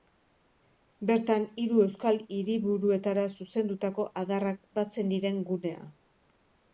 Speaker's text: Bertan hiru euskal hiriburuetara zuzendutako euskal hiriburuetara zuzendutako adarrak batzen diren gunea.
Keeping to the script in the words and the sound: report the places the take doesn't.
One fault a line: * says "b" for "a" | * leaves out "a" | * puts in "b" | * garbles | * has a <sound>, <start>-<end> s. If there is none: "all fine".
* leaves out "euskal hiriburuetara zuzendutako"